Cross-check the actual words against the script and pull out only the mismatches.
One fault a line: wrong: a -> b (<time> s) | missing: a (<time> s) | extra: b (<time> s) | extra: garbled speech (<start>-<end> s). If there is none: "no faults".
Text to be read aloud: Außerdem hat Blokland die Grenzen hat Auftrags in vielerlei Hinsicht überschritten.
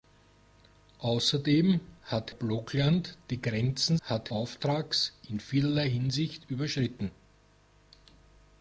no faults